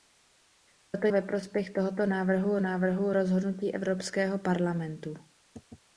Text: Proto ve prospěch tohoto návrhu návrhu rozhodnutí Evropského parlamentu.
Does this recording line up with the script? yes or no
yes